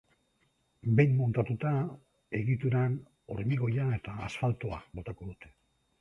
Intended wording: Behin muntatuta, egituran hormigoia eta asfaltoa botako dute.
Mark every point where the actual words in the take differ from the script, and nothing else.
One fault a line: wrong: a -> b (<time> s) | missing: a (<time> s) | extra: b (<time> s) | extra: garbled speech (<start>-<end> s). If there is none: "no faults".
no faults